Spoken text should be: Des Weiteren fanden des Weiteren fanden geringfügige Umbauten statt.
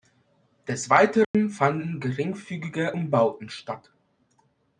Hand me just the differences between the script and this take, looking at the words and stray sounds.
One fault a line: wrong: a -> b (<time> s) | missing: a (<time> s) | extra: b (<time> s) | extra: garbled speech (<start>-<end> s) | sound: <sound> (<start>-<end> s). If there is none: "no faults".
sound: dropout (1.2-1.3 s)
missing: des Weiteren fanden (2.0 s)